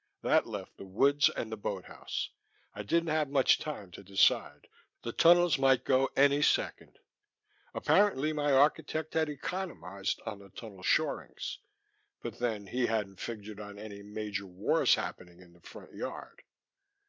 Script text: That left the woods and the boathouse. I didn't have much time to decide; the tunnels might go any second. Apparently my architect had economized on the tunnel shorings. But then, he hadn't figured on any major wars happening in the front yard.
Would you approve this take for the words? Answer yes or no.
yes